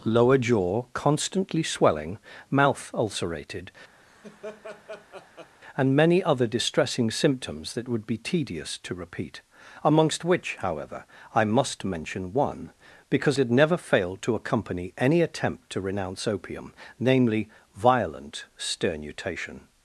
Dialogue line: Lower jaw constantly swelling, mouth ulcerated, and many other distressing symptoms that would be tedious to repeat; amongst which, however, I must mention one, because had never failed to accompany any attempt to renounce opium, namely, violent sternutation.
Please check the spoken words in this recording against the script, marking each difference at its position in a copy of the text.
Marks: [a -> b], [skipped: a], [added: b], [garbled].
Lower jaw constantly swelling, mouth ulcerated, and many other distressing symptoms that would be tedious to repeat; amongst which, however, I must mention one, because had never failed to accompany any attempt to renounce opium, namely, violent sternutation.